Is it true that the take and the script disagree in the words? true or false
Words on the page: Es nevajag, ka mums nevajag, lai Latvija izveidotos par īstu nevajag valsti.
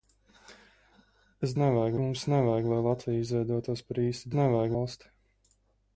false